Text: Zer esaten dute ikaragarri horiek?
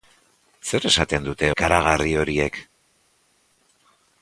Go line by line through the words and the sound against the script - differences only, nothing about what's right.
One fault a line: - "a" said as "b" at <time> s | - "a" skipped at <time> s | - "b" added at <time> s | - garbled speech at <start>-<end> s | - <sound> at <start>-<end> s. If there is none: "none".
none